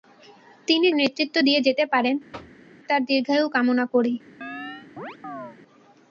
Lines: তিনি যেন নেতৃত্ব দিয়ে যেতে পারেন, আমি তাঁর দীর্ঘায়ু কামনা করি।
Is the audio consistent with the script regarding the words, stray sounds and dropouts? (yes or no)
no